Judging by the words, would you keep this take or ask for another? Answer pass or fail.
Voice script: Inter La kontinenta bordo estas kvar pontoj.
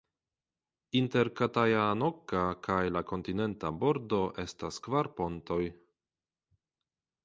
fail